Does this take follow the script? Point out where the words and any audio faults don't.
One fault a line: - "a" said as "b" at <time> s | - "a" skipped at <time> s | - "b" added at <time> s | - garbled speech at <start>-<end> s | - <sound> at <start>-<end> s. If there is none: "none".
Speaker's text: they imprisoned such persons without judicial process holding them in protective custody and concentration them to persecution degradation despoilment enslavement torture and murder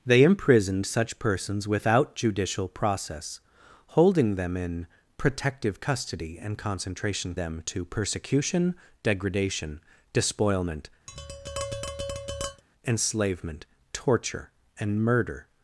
- tap at 11.1-12.6 s